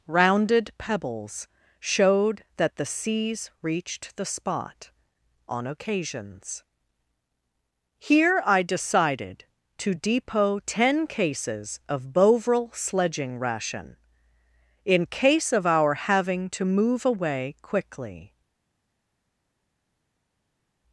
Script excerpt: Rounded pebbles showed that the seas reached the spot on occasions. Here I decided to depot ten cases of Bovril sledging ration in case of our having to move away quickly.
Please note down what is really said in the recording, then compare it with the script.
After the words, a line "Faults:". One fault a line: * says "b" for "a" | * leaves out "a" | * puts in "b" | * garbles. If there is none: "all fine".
Rounded pebbles showed that the seas reached the spot on occasions. Here I decided to depot ten cases of Bovril sledging ration in case of our having to move away quickly.
Faults:
all fine